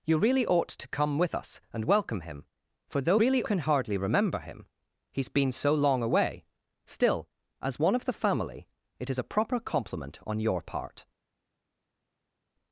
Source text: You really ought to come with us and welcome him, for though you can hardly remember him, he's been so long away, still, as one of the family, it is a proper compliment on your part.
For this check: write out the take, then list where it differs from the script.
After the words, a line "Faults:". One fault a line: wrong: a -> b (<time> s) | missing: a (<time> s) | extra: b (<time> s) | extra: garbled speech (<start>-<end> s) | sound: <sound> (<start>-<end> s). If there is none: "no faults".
You really ought to come with us and welcome him, for though really can hardly remember him, he's been so long away, still, as one of the family, it is a proper compliment on your part.
Faults:
wrong: you -> really (3.1 s)